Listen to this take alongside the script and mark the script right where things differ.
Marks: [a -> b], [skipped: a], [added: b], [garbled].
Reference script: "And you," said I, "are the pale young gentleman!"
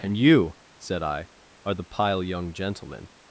"And you," said I, "are the [pale -> pile] young gentleman!"